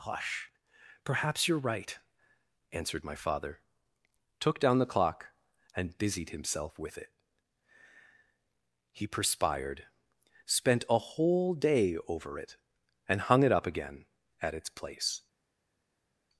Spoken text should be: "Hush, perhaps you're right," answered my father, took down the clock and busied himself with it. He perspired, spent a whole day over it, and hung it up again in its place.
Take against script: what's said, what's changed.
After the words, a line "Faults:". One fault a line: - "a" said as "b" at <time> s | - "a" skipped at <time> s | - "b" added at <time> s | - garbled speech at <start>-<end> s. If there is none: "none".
"Hush, perhaps you're right," answered my father, took down the clock and busied himself with it. He perspired, spent a whole day over it, and hung it up again at its place.
Faults:
- "in" said as "at" at 14.4 s